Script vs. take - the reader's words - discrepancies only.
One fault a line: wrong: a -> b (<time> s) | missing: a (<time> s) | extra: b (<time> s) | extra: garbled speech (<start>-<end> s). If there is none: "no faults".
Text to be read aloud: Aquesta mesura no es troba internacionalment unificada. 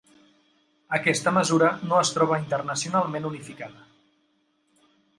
no faults